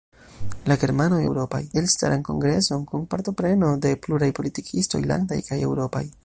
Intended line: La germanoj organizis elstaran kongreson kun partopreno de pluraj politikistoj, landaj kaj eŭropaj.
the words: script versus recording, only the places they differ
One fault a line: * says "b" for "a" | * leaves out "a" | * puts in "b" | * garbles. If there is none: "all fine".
* says "eŭropaj" for "organizis"